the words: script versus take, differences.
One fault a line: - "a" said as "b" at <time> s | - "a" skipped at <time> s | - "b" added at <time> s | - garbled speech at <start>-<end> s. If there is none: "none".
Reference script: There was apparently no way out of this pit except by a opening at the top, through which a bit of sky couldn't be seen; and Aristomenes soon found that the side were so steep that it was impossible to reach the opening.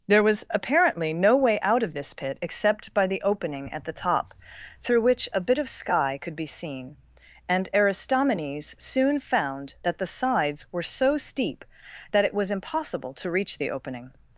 - "a" said as "the" at 3.0 s
- "couldn't" said as "could" at 6.2 s
- "side" said as "sides" at 10.1 s